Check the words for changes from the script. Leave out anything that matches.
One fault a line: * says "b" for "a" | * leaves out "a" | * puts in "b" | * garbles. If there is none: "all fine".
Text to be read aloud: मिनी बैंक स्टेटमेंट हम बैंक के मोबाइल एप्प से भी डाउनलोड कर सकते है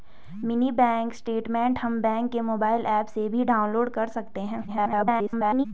* garbles